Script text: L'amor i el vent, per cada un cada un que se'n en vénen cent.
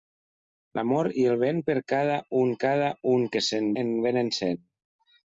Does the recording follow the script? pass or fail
pass